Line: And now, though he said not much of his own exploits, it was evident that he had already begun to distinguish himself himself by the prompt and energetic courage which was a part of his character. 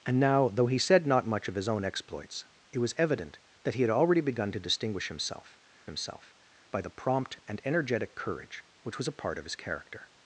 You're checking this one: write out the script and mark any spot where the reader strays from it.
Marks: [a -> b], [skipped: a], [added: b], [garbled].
And now, though he said not much of his own exploits, it was evident that he had already begun to distinguish himself himself by the prompt and energetic courage which was a part of his character.